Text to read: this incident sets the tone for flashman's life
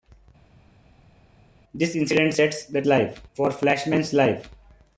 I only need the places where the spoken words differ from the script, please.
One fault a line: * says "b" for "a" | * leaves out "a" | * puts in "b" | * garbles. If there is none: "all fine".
* says "life" for "tone"